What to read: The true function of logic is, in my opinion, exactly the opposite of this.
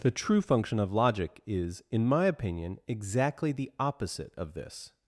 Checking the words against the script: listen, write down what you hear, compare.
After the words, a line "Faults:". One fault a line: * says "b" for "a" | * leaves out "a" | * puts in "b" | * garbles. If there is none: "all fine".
The true function of logic is, in my opinion, exactly the opposite of this.
Faults:
all fine